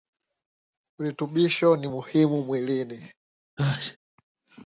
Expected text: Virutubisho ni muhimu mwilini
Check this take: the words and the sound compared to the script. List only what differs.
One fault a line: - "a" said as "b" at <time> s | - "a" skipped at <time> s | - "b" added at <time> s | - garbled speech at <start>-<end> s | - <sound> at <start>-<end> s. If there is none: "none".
- sneeze at 3.6-4.0 s